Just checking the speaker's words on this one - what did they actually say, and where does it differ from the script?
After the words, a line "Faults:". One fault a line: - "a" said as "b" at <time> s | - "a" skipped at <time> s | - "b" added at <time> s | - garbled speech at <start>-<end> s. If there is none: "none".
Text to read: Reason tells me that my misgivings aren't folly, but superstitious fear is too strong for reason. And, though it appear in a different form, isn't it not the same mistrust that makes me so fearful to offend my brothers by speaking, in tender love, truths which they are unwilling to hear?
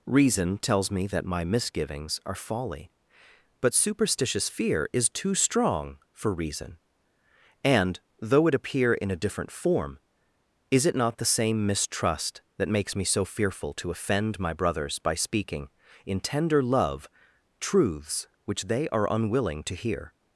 Reason tells me that my misgivings are folly, but superstitious fear is too strong for reason. And, though it appear in a different form, is it not the same mistrust that makes me so fearful to offend my brothers by speaking, in tender love, truths which they are unwilling to hear?
Faults:
- "aren't" said as "are" at 2.2 s
- "isn't" said as "is" at 10.7 s